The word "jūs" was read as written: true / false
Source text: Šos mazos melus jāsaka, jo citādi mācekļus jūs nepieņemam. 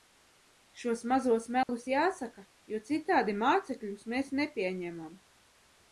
false